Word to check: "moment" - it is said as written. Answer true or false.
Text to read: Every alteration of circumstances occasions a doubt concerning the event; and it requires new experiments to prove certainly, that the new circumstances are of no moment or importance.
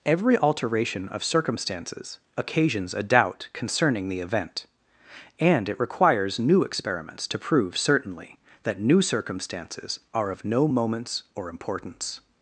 false